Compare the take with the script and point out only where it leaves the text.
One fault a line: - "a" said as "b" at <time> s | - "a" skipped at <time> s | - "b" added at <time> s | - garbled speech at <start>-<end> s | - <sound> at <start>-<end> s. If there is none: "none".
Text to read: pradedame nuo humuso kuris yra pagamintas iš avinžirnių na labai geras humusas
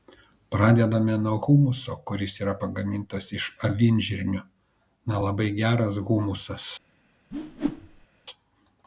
- whoosh at 7.3-8.1 s